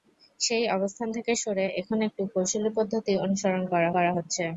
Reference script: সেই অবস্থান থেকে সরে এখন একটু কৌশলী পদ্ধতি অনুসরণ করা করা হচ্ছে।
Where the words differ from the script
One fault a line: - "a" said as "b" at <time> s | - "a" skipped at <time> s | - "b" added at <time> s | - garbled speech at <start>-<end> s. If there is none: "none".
none